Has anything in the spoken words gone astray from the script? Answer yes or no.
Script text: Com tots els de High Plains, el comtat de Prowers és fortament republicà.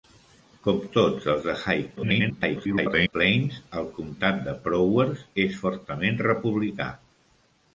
yes